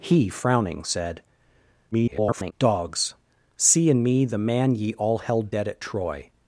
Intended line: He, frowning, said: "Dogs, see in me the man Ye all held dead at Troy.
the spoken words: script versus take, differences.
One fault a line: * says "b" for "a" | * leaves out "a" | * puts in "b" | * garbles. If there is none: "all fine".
* garbles